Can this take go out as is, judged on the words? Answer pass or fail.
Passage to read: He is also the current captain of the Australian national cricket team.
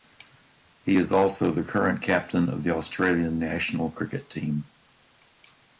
pass